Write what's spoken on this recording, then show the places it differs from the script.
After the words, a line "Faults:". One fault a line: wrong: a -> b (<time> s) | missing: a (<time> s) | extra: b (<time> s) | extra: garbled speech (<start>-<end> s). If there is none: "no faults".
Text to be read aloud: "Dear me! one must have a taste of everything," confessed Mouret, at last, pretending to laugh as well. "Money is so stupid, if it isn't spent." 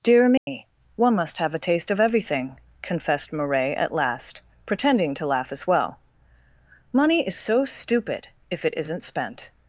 "Dear me! one must have a taste of everything," confessed Mouret, at last, pretending to laugh as well. "Money is so stupid, if it isn't spent."
Faults:
no faults